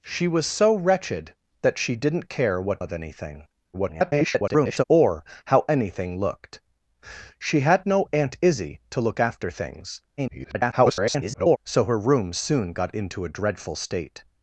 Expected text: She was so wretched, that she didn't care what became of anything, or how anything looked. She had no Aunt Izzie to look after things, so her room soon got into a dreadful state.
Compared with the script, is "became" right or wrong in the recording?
wrong